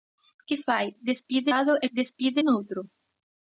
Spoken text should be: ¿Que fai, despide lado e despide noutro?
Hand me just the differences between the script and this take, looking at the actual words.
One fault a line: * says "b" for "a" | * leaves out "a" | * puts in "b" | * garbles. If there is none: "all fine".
all fine